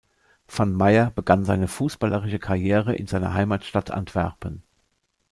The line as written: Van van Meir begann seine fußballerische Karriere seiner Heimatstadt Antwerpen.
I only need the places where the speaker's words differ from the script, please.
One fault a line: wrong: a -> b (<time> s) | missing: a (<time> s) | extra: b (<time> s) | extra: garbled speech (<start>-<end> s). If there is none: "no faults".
missing: van (0.8 s)
extra: in (2.9 s)